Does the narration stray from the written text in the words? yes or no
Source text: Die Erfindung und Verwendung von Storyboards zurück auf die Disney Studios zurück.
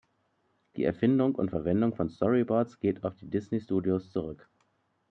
yes